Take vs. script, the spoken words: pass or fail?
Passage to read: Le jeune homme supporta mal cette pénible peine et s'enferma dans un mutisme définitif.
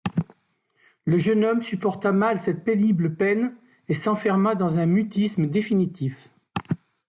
pass